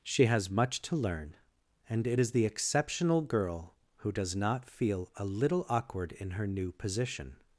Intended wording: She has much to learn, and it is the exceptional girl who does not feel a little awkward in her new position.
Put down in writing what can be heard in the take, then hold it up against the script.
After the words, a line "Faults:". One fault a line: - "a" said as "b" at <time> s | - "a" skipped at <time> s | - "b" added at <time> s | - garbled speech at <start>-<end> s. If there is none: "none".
She has much to learn, and it is the exceptional girl who does not feel a little awkward in her new position.
Faults:
none